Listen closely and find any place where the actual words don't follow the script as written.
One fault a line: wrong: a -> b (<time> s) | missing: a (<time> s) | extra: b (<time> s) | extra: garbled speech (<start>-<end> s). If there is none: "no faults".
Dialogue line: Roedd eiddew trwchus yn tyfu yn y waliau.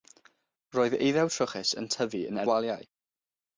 no faults